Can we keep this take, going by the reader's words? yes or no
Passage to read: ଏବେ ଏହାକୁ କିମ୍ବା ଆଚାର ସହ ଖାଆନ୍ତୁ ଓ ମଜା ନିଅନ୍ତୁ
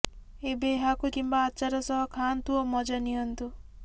yes